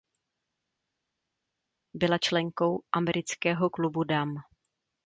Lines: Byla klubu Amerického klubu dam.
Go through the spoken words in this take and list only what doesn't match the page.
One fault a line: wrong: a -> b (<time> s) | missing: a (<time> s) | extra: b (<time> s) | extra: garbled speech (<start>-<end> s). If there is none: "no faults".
wrong: klubu -> členkou (2.2 s)